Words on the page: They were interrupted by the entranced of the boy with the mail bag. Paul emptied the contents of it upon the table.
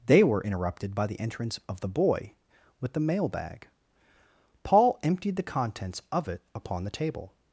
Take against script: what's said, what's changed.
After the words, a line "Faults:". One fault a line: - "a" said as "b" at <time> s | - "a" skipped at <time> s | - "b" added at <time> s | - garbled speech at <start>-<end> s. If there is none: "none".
They were interrupted by the entrance of the boy with the mail bag. Paul emptied the contents of it upon the table.
Faults:
- "entranced" said as "entrance" at 1.2 s